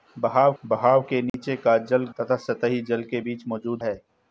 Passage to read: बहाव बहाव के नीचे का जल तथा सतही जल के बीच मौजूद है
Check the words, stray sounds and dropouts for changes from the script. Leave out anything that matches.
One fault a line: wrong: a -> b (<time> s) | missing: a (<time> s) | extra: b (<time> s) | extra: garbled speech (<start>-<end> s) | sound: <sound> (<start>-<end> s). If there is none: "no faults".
sound: dropout (1.3-1.3 s)